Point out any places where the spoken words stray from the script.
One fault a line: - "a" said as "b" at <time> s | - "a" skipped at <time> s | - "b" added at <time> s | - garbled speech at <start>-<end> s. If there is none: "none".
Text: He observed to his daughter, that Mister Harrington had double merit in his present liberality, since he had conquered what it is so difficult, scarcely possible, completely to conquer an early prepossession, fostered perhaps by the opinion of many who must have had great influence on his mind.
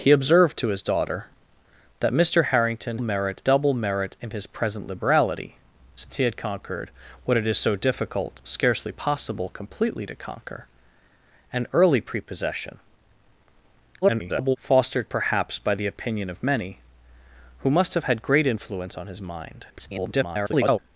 - "had" said as "merit" at 3.0 s
- garbled speech at 14.0-14.6 s
- garbled speech at 19.7-20.8 s